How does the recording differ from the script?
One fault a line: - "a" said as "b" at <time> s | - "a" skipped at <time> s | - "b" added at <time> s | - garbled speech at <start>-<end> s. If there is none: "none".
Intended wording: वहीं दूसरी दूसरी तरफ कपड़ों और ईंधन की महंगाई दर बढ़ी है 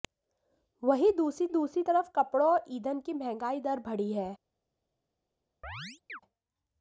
none